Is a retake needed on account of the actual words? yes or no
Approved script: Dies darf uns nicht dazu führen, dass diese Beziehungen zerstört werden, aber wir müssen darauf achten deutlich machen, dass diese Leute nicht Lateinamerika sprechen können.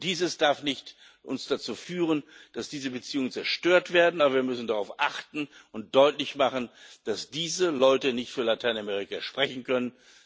yes